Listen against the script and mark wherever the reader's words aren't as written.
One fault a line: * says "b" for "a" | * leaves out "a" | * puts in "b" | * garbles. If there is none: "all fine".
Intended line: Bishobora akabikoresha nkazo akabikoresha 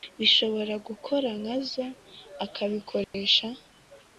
* says "gukora" for "akabikoresha"